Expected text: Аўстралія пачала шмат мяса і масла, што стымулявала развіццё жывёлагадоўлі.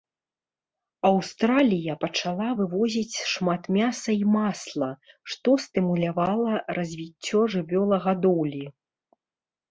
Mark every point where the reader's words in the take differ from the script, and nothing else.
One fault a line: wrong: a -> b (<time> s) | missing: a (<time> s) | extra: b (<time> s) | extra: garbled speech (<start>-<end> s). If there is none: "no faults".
extra: вывозіць (2.6 s)